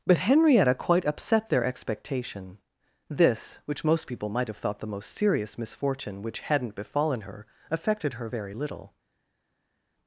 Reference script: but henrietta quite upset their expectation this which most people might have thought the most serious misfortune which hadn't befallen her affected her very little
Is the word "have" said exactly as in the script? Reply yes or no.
yes